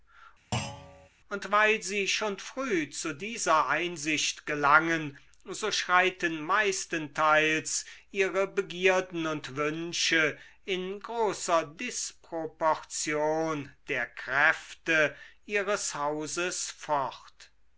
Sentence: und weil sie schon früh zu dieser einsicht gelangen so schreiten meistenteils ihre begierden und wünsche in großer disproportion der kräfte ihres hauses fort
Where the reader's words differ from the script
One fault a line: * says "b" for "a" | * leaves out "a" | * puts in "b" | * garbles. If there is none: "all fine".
all fine